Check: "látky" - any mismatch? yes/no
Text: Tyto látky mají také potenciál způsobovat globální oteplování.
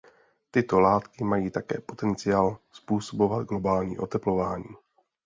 no